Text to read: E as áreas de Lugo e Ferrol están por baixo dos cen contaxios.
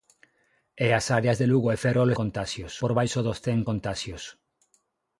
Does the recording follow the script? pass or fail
fail